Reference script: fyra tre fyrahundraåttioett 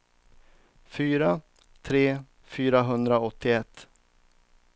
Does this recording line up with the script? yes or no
yes